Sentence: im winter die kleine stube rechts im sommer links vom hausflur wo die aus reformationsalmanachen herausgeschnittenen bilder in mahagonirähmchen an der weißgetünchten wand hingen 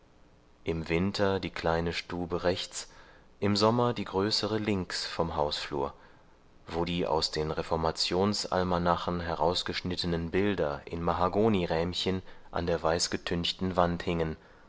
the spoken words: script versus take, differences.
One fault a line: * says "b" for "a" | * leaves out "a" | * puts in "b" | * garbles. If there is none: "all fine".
* puts in "die größere"
* puts in "den"